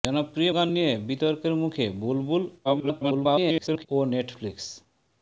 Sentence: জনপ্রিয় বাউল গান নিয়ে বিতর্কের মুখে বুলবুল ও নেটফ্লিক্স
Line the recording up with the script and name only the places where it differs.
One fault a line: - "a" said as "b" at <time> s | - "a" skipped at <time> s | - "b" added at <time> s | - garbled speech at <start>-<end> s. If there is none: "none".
- "বাউল" skipped at 0.5 s
- garbled speech at 2.6-3.9 s